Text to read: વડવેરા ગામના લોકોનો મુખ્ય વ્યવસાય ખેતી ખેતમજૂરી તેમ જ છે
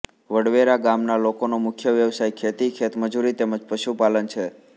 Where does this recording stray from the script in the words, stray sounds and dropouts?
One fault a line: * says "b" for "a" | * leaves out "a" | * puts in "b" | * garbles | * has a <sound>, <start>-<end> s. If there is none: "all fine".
* puts in "પશુપાલન"